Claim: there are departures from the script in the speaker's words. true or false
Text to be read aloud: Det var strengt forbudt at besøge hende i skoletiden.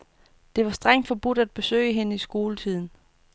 false